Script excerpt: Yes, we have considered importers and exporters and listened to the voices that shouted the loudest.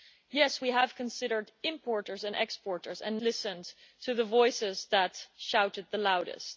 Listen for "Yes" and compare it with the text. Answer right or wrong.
right